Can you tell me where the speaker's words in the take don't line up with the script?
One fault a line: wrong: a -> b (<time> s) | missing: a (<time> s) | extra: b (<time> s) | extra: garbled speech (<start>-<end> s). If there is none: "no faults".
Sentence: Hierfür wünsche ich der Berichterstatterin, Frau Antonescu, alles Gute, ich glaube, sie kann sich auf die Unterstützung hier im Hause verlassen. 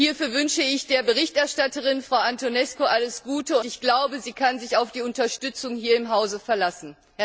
no faults